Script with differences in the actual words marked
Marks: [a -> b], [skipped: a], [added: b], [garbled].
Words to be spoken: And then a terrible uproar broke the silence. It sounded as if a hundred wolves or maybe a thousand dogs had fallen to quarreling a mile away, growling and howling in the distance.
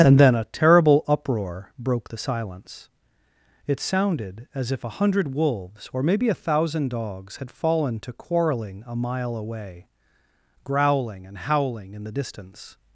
And then a terrible uproar broke the silence. It sounded as if a hundred wolves or maybe a thousand dogs had fallen to quarreling a mile away, growling and howling in the distance.